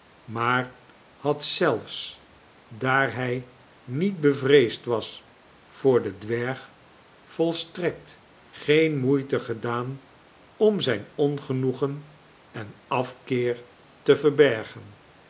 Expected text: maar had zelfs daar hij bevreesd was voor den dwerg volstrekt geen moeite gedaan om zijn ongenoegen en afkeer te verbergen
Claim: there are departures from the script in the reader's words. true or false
true